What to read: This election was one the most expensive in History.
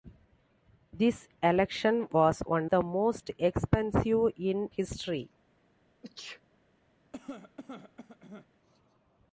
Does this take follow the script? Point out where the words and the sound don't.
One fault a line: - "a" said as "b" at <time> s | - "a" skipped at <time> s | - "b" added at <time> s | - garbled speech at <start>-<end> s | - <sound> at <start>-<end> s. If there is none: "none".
- sneeze at 6.0-6.4 s
- cough at 7.1-8.5 s